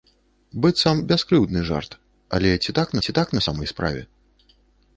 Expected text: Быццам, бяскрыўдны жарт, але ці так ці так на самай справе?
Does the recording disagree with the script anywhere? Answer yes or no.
no